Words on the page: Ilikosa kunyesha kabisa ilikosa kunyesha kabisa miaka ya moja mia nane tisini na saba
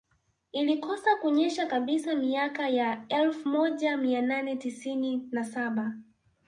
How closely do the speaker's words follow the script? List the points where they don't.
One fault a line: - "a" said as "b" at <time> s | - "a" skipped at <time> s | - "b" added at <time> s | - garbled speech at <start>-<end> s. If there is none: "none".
- "ilikosa kunyesha kabisa" skipped at 2.1 s
- "elfu" added at 3.1 s